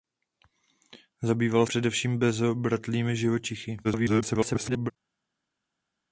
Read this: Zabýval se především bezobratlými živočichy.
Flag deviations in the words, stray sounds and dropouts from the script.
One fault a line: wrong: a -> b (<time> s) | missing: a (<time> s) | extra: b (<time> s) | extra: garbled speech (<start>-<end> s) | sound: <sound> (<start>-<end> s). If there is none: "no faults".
missing: se (1.6 s)
extra: garbled speech (3.8-4.9 s)